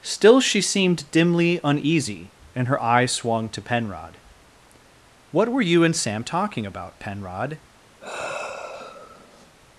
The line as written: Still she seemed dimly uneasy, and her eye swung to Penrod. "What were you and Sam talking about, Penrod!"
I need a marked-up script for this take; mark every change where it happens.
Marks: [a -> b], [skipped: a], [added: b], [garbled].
Still she seemed dimly uneasy, and her eye swung to Penrod. "What were you and Sam talking about, Penrod!"